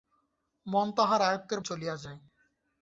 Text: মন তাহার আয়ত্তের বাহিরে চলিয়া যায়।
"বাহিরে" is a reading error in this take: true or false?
true